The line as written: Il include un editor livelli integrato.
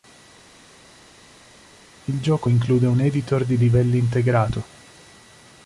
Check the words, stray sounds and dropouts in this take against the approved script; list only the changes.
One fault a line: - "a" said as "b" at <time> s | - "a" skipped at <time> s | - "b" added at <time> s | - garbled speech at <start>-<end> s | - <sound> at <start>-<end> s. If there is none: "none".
- "gioco" added at 2.2 s
- "di" added at 3.4 s